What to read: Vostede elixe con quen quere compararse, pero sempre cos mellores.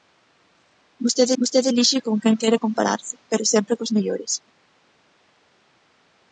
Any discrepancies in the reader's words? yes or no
yes